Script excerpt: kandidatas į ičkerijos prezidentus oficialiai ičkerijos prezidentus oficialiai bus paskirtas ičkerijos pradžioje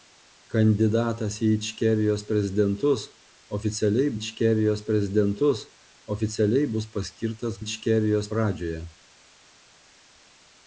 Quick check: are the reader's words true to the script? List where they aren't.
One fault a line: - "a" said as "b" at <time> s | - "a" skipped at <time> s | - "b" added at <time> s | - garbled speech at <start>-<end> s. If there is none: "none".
none